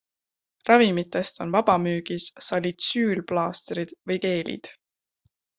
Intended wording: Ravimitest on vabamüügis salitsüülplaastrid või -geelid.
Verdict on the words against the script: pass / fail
pass